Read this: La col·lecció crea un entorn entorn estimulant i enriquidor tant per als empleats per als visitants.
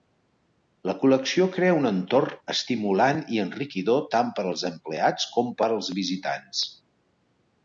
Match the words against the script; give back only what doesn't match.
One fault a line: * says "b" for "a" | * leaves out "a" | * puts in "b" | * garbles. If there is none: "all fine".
* leaves out "entorn"
* puts in "com"